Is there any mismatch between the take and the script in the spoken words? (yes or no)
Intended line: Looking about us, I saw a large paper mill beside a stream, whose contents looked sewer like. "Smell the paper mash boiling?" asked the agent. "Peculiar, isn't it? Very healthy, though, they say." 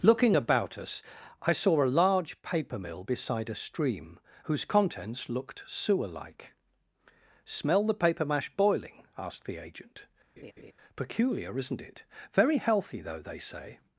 no